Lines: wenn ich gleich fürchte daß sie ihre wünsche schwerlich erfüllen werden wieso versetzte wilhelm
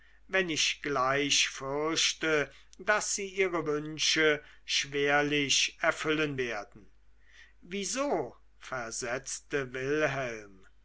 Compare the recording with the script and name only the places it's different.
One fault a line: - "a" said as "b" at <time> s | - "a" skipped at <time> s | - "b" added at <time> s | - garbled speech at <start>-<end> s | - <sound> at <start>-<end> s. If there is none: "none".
none